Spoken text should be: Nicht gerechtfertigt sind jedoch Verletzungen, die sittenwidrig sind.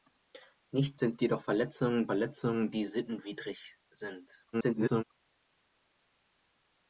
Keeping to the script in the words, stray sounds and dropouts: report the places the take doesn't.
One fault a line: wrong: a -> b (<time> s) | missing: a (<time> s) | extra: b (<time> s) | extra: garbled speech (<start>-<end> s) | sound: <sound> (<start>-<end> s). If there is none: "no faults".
missing: gerechtfertigt (1.0 s)
extra: Verletzungen (2.0 s)
extra: garbled speech (4.5-5.0 s)